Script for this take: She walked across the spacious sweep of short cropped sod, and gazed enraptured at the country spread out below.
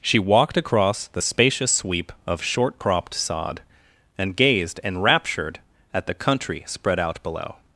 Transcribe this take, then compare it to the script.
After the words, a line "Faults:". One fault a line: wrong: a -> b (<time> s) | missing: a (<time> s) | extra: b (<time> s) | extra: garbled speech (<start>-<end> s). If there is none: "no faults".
She walked across the spacious sweep of short cropped sod, and gazed enraptured at the country spread out below.
Faults:
no faults